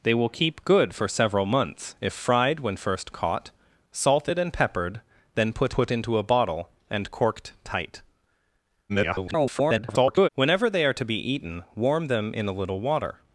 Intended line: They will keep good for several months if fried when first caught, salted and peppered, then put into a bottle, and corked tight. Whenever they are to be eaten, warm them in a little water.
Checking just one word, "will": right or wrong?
right